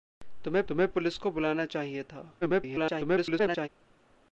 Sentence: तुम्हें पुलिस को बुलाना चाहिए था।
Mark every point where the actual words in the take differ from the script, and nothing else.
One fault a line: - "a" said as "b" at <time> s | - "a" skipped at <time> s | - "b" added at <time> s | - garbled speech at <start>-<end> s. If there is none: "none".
- "तुम्हें" added at 0.7 s
- garbled speech at 2.4-3.7 s